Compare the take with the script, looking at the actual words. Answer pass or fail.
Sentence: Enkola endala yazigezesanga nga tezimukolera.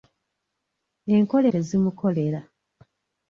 fail